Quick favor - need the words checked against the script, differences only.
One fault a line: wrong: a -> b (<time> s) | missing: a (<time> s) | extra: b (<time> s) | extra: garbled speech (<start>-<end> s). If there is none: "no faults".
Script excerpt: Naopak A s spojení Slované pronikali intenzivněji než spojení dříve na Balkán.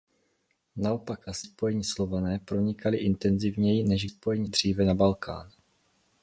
no faults